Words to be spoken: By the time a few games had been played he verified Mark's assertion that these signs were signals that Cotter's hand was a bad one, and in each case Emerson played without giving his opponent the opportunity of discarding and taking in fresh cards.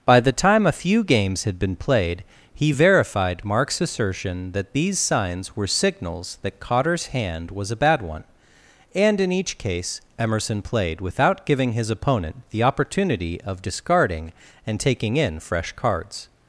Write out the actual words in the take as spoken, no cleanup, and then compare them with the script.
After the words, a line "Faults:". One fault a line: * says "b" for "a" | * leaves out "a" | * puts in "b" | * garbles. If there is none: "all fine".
By the time a few games had been played he verified Mark's assertion that these signs were signals that Cotter's hand was a bad one, and in each case Emerson played without giving his opponent the opportunity of discarding and taking in fresh cards.
Faults:
all fine